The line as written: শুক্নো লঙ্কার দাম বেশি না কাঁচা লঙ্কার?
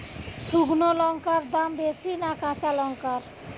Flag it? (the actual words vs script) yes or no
no